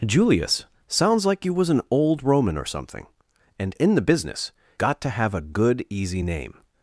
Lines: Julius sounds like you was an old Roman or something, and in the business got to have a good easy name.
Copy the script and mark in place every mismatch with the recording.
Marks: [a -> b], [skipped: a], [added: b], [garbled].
Julius sounds like you was an old Roman or something, and in the business got to have a good easy name.